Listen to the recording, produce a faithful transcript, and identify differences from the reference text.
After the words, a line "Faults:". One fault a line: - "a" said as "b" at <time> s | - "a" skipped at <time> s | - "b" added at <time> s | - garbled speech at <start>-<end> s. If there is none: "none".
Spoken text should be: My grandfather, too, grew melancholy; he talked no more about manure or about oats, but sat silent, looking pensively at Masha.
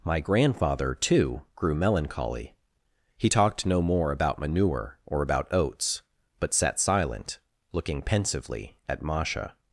My grandfather, too, grew melancholy; he talked no more about manure or about oats, but sat silent, looking pensively at Masha.
Faults:
none